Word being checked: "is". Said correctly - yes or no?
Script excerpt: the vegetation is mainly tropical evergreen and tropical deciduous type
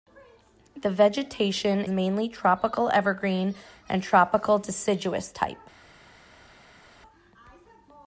no